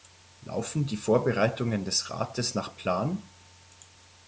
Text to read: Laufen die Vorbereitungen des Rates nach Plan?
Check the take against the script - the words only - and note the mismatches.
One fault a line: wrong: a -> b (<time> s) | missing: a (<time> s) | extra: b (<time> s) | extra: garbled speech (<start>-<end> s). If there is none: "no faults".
no faults